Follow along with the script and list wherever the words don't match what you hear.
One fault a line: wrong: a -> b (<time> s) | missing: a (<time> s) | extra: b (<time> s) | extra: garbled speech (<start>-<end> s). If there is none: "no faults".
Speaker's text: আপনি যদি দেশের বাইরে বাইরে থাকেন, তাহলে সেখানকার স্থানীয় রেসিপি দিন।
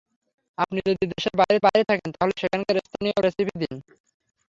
no faults